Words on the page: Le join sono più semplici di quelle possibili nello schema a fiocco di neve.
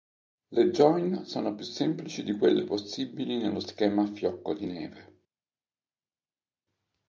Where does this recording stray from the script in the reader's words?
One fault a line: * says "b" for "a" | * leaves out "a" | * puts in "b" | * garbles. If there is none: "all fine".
all fine